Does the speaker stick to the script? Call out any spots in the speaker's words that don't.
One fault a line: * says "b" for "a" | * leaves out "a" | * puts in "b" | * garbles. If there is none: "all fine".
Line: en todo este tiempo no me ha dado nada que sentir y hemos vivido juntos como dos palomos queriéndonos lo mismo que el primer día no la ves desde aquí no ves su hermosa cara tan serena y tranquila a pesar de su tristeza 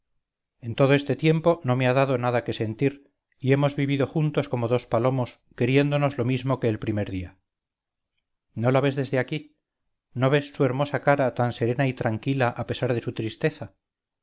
all fine